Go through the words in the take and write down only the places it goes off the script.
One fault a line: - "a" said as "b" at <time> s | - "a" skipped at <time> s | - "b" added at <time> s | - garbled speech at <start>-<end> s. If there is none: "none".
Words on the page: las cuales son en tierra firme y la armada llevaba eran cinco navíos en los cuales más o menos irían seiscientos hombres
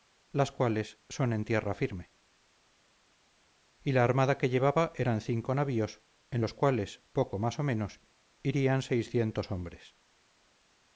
- "que" added at 4.4 s
- "poco" added at 7.1 s